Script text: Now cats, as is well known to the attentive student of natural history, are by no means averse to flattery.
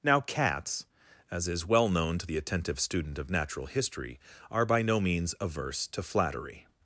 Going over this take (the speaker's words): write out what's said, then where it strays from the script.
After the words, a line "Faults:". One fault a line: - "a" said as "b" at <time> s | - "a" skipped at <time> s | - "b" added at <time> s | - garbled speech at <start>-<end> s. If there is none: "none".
Now cats, as is well known to the attentive student of natural history, are by no means averse to flattery.
Faults:
none